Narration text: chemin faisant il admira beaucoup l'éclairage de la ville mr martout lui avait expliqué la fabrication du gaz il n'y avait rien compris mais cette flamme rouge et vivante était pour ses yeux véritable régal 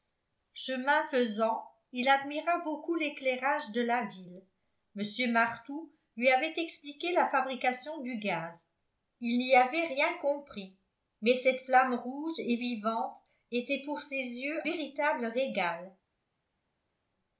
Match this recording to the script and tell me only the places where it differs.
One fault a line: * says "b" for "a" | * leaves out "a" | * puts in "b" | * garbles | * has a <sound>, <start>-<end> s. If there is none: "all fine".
all fine